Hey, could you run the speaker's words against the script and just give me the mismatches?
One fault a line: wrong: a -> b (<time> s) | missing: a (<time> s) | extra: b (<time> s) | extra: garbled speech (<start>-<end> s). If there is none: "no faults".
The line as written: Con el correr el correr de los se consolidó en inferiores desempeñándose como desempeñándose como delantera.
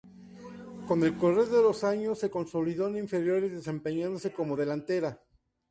missing: el correr (1.4 s)
extra: años (1.8 s)
missing: desempeñándose como (4.6 s)